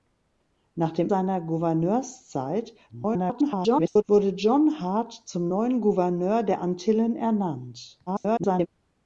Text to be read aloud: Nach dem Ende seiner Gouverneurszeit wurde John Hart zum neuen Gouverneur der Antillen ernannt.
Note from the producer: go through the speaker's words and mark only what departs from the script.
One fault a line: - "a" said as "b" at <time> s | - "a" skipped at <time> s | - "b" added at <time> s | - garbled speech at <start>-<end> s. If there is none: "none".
- "Ende" skipped at 1.1 s
- garbled speech at 2.9-4.0 s
- garbled speech at 8.1-8.7 s